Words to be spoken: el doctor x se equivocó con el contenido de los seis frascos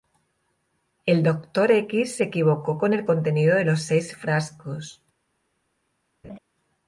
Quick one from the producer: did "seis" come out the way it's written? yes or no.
yes